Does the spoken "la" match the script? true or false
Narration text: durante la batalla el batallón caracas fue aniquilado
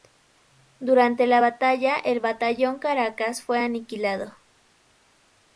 true